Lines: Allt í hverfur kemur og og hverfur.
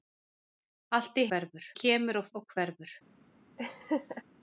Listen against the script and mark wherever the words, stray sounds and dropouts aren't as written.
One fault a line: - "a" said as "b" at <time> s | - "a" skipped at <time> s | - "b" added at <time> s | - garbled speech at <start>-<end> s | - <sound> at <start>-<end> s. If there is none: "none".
- laugh at 3.6-4.2 s